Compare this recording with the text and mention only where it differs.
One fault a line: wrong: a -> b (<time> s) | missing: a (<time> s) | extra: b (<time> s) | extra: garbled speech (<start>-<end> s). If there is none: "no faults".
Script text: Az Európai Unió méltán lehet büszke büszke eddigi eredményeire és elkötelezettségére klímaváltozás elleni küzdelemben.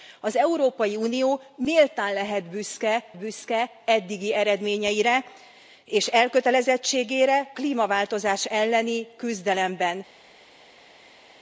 no faults